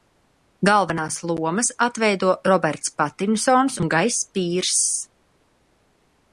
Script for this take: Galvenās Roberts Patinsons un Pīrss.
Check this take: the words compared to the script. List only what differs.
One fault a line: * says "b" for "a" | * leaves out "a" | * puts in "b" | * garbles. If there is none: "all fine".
* puts in "lomas atveido"
* puts in "Gajs"